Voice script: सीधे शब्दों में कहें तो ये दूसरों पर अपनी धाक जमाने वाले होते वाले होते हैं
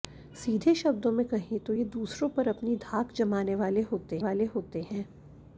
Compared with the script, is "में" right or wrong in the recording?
right